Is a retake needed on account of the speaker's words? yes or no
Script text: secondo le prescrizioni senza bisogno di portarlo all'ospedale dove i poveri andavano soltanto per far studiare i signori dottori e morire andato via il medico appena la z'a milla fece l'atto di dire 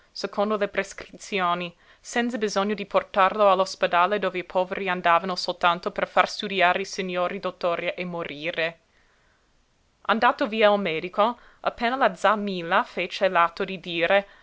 no